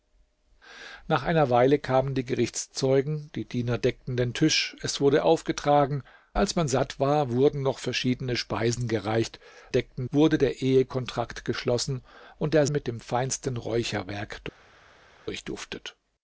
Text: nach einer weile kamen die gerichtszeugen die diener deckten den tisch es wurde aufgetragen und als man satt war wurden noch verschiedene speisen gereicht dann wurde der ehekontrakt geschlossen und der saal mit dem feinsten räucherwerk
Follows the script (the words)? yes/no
no